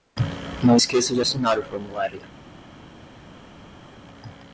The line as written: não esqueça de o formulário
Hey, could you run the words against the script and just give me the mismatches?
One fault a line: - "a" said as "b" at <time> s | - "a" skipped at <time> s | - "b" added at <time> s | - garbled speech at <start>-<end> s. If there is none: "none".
- "assinar" added at 1.2 s